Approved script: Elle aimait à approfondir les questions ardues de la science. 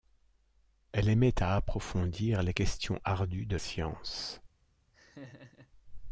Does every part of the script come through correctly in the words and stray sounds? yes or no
no